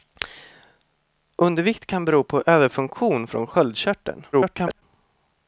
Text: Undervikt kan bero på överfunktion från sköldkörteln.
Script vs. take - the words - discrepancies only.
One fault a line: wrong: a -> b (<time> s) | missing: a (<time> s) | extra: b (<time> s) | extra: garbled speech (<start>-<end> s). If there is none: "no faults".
extra: garbled speech (4.3-4.8 s)